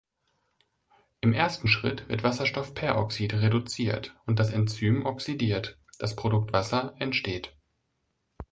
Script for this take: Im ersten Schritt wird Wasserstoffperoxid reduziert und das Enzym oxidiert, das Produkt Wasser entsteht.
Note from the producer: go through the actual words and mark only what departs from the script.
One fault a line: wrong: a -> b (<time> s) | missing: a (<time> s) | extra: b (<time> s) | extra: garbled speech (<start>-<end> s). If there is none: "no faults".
no faults